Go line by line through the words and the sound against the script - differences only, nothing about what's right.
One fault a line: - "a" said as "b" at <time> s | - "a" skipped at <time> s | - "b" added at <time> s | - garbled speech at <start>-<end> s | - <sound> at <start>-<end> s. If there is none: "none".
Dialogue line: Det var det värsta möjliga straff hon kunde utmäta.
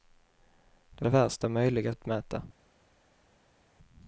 - "var" skipped at 1.1 s
- "straff hon kunde" skipped at 1.9 s